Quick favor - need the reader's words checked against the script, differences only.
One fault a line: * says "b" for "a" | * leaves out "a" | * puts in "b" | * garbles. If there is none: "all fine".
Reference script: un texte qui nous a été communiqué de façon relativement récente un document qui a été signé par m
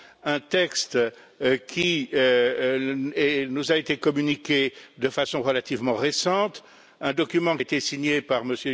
* leaves out "qui"